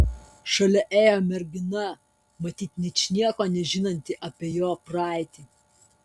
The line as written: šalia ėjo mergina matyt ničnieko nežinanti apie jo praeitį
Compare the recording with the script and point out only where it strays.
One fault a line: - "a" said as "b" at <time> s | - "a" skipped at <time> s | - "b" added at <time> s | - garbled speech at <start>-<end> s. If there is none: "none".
none